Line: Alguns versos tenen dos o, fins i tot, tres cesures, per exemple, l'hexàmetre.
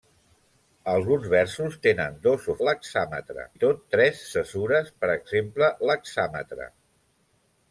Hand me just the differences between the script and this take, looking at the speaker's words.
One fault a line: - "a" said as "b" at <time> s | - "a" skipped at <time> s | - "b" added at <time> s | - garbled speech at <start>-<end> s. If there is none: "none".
- "fins" said as "l'hexàmetre" at 2.7 s